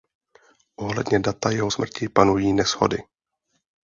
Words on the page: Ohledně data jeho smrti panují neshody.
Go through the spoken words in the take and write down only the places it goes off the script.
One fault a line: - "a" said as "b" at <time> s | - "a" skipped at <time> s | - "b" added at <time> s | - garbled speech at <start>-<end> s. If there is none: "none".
none